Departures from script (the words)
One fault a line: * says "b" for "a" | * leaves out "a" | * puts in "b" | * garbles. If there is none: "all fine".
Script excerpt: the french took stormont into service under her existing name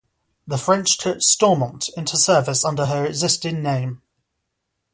all fine